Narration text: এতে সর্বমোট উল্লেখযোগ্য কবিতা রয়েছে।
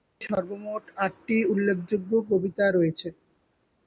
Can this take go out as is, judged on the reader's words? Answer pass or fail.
fail